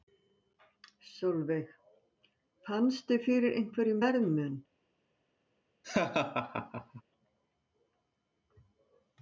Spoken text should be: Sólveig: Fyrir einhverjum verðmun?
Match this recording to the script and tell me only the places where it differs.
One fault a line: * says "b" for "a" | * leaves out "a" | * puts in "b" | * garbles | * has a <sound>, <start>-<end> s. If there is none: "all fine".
* puts in "Fannstu"
* has a laugh, 5.8-7.0 s